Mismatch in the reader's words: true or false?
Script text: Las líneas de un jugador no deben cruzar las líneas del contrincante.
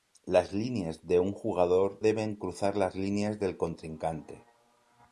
true